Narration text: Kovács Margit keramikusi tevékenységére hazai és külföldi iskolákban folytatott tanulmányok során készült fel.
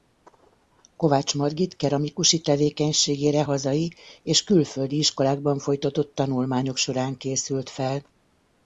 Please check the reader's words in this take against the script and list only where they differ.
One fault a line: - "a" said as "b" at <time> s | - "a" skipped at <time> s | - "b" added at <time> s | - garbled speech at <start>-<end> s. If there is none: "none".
none